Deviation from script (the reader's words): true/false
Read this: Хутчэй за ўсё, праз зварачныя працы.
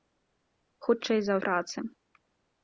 true